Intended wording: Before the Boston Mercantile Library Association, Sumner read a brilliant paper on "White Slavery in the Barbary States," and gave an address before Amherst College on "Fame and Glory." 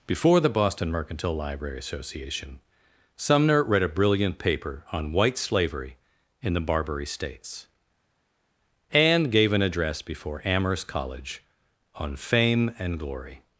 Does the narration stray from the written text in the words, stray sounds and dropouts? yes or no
no